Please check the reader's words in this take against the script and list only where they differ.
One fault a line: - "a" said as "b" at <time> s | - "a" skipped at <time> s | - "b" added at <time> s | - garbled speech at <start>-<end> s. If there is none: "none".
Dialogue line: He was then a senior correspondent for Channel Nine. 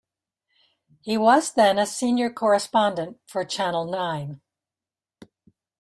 none